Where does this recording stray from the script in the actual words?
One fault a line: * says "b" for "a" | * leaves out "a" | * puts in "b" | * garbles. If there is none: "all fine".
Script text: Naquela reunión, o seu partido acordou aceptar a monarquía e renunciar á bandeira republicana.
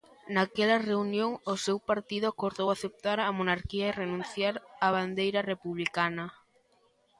all fine